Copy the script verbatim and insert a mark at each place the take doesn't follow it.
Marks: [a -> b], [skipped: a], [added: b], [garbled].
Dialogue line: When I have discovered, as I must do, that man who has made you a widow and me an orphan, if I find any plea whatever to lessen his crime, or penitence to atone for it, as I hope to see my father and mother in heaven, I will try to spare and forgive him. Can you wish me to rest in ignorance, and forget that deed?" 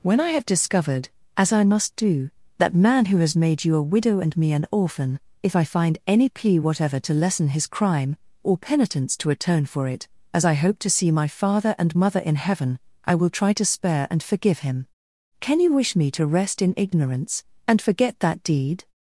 When I have discovered, as I must do, that man who has made you a widow and me an orphan, if I find any plea whatever to lessen his crime, or penitence to atone for it, as I hope to see my father and mother in heaven, I will try to spare and forgive him. Can you wish me to rest in ignorance, and forget that deed?"